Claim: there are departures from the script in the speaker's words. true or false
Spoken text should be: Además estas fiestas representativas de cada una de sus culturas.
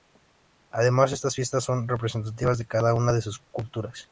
true